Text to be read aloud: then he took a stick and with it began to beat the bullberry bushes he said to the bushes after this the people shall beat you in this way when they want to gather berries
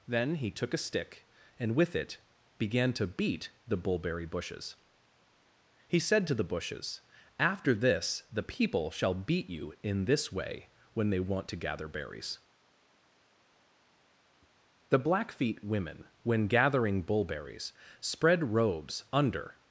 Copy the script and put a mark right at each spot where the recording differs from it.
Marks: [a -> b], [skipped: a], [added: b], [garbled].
then he took a stick and with it began to beat the bullberry bushes he said to the bushes after this the people shall beat you in this way when they want to gather berries [added: the blackfeet women when gathering bullberries spread robes under]